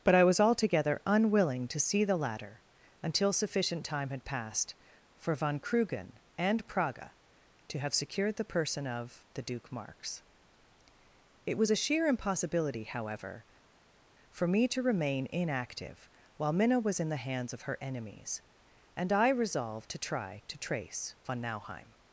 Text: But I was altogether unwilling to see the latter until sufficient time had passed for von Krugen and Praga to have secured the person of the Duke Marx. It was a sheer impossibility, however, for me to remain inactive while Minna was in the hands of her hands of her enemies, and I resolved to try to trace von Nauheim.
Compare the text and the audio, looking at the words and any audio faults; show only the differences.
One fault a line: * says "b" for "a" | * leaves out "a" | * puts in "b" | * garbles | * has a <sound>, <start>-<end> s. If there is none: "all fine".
* leaves out "hands of her"